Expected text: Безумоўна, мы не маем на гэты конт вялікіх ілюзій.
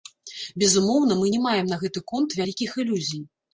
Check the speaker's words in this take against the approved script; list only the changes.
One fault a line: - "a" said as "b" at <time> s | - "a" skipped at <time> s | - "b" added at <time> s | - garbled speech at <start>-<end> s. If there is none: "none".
none